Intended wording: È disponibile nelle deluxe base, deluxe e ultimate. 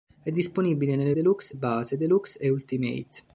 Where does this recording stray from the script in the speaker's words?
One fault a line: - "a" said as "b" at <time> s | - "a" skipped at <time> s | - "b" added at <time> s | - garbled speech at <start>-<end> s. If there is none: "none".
none